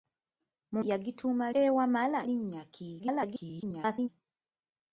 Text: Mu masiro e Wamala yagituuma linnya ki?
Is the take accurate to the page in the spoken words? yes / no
no